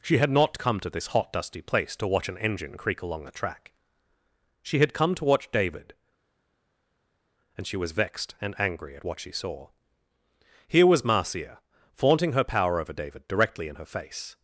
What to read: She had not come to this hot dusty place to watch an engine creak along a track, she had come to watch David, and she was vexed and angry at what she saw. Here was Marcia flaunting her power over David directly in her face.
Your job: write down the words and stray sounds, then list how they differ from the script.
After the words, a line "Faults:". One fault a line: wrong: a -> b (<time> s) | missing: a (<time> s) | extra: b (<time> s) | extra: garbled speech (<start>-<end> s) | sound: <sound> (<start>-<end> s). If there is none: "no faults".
She had not come to this hot dusty place to watch an engine creak along a track, she had come to watch David, and she was vexed and angry at what she saw. Here was Marcia flaunting her power over David directly in her face.
Faults:
no faults